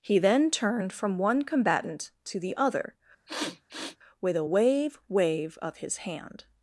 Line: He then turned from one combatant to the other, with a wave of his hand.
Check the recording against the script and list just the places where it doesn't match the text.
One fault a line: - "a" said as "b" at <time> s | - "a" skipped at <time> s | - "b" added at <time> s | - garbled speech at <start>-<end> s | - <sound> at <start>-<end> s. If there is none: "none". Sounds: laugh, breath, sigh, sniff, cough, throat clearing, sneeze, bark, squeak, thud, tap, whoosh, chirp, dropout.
- sniff at 3.3-4.0 s
- "wave" added at 5.1 s